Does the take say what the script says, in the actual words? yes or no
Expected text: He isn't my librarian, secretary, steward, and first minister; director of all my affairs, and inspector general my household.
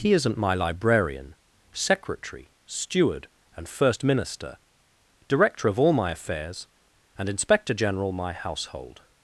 yes